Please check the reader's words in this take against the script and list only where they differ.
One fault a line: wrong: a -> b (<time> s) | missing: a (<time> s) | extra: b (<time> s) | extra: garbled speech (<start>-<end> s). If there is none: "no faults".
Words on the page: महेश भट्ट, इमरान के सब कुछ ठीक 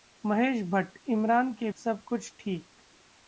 no faults